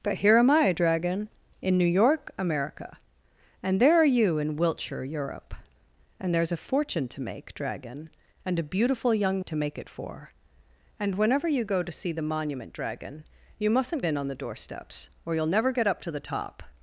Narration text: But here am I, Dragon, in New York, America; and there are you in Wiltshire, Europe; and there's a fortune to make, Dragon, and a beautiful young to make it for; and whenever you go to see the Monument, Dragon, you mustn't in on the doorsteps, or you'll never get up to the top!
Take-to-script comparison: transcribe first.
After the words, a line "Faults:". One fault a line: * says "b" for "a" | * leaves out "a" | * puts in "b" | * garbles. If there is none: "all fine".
But here am I, Dragon, in New York, America; and there are you in Wiltshire, Europe; and there's a fortune to make, Dragon, and a beautiful young to make it for; and whenever you go to see the Monument, Dragon, you mustn't in on the doorsteps, or you'll never get up to the top!
Faults:
all fine